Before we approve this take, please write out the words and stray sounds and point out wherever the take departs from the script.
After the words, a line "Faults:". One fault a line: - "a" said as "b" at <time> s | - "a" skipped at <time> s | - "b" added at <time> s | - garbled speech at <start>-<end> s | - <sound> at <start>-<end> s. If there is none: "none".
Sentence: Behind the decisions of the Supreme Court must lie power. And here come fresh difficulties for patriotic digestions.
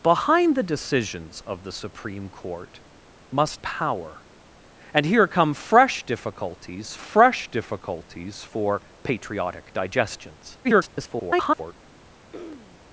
Behind the decisions of the Supreme Court must power. And here come fresh difficulties fresh difficulties for patriotic digestions. [garbled]
Faults:
- "lie" skipped at 3.6 s
- "fresh difficulties" added at 7.0 s
- garbled speech at 10.6-11.7 s
- throat clearing at 12.3-12.8 s